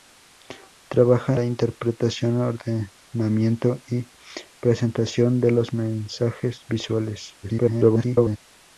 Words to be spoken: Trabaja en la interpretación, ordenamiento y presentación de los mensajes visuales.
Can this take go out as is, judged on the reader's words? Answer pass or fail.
fail